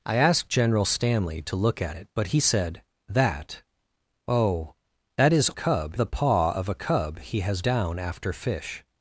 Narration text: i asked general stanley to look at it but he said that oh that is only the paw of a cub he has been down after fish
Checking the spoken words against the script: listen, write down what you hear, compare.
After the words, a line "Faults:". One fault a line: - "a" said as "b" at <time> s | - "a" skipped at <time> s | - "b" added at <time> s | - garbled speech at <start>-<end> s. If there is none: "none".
i asked general stanley to look at it but he said that oh that is cub the paw of a cub he has down after fish
Faults:
- "only" said as "cub" at 5.5 s
- "been" skipped at 7.6 s